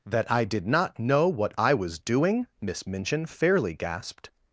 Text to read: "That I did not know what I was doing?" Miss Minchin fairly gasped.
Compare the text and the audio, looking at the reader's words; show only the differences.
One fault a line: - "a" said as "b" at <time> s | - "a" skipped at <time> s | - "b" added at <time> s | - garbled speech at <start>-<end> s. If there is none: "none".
none